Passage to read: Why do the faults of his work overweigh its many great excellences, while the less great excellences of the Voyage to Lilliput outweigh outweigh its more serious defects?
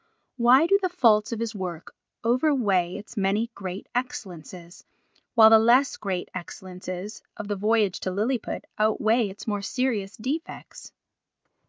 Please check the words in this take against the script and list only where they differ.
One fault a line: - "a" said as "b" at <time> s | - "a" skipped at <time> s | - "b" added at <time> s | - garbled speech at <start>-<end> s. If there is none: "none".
- "outweigh" skipped at 9.3 s